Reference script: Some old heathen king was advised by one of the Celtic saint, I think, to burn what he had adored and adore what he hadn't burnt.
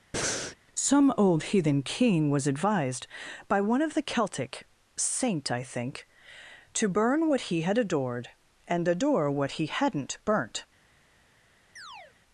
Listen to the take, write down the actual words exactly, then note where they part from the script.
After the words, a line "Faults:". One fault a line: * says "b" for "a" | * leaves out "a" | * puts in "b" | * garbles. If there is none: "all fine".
Some old heathen king was advised by one of the Celtic saint, I think, to burn what he had adored and adore what he hadn't burnt.
Faults:
all fine